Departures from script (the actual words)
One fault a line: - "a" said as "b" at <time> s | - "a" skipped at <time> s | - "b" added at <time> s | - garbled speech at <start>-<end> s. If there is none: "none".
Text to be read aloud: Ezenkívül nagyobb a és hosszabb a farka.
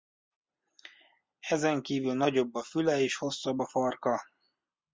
- "füle" added at 2.6 s